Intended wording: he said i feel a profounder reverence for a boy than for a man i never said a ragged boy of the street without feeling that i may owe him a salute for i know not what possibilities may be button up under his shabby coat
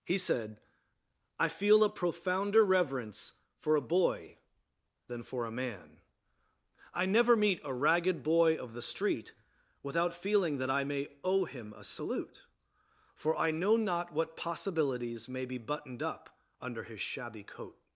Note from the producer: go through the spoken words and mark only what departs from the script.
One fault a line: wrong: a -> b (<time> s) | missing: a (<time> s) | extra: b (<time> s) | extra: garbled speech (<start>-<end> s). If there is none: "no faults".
wrong: said -> meet (7.3 s)
wrong: button -> buttoned (15.6 s)